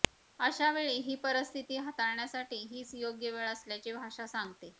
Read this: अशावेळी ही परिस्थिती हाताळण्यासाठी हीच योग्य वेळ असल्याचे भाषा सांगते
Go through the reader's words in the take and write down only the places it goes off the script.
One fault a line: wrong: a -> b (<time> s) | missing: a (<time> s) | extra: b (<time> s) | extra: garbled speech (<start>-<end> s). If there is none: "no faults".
no faults